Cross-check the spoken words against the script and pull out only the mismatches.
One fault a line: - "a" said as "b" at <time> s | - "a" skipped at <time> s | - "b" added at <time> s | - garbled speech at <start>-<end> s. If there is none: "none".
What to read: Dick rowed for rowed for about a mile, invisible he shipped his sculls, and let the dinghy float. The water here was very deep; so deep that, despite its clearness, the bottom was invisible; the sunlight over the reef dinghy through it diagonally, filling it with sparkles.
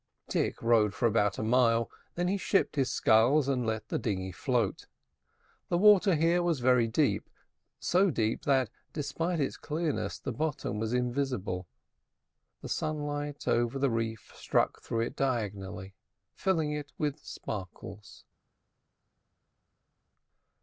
- "rowed for" skipped at 1.1 s
- "invisible" said as "then" at 2.1 s
- "dinghy" said as "struck" at 14.4 s